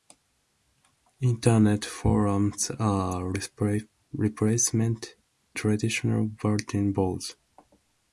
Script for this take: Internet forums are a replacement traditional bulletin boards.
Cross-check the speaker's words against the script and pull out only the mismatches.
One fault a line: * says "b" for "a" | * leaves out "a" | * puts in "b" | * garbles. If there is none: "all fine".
all fine